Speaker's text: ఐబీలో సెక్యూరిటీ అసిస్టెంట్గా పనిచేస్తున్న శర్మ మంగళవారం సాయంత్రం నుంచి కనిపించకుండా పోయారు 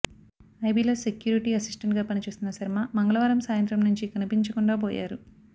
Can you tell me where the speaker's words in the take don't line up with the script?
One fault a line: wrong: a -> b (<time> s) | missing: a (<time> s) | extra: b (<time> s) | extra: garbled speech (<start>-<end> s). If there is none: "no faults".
no faults